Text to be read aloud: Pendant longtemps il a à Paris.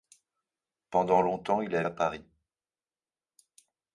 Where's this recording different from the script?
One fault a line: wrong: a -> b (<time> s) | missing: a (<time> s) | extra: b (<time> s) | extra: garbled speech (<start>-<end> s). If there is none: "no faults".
no faults